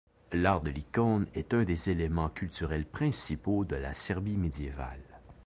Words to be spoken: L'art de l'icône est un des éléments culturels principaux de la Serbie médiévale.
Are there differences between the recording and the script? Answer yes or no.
no